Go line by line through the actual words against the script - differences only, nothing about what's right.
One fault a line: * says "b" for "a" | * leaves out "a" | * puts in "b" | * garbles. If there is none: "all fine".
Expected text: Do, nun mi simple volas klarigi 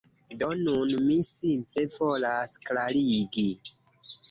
all fine